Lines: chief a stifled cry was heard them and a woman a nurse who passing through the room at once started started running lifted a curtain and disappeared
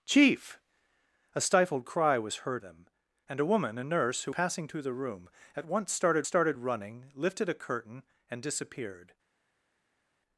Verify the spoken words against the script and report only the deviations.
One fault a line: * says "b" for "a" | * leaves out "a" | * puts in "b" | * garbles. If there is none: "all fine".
all fine